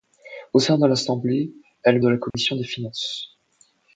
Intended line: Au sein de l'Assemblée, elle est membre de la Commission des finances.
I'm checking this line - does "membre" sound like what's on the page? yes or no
no